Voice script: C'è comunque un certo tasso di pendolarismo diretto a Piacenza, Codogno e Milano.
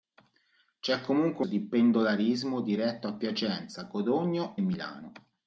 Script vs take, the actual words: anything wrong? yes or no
yes